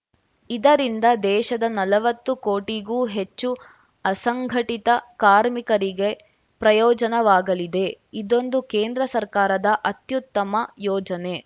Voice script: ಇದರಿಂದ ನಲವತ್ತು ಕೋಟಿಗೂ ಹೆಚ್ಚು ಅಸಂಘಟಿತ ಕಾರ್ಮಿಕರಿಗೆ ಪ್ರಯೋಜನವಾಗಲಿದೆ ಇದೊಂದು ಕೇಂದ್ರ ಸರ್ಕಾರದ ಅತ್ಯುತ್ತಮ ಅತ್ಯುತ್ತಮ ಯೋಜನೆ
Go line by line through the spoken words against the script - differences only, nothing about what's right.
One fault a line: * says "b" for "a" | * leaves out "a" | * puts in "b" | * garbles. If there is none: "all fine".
* puts in "ದೇಶದ"
* leaves out "ಅತ್ಯುತ್ತಮ"